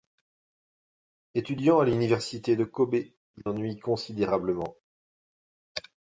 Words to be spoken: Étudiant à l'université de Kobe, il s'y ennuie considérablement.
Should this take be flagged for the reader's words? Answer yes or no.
yes